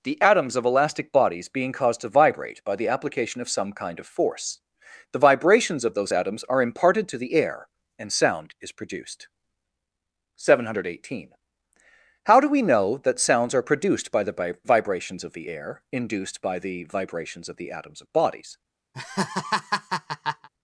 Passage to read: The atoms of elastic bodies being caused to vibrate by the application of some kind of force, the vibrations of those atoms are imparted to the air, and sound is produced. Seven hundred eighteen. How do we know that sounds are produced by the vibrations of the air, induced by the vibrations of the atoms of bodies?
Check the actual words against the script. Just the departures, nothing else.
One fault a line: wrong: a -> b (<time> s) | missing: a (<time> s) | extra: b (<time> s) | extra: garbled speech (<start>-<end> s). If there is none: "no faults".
no faults